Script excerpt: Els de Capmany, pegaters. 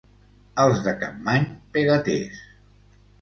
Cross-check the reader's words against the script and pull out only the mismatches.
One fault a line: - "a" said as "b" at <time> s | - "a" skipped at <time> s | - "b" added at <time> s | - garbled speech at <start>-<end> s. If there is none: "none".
none